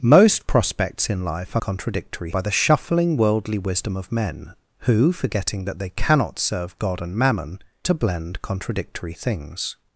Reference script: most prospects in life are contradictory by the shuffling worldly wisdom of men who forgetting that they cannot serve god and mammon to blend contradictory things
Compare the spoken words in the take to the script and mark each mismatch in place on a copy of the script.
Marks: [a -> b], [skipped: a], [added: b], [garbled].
most prospects in life are contradictory by the shuffling worldly wisdom of men who forgetting that they cannot serve god and mammon to blend contradictory things